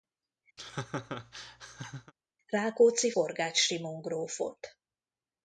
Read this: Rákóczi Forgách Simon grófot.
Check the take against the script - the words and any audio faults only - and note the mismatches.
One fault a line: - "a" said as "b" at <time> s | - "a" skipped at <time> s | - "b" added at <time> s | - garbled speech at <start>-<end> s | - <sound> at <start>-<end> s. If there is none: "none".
- laugh at 0.6-2.1 s